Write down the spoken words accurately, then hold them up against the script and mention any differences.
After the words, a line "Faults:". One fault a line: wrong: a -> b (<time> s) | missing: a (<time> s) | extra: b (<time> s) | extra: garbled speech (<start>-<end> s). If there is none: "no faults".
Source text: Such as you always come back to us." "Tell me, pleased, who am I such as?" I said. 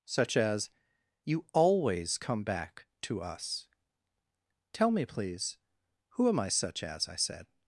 Such as you always come back to us." "Tell me, please, who am I such as?" I said.
Faults:
wrong: pleased -> please (5.0 s)